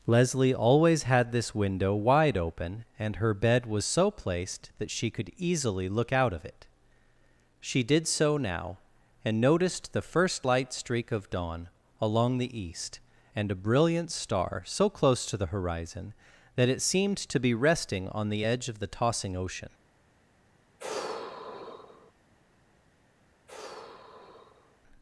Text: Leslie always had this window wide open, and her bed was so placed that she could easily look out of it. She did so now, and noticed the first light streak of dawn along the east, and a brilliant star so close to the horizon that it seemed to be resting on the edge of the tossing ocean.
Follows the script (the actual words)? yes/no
yes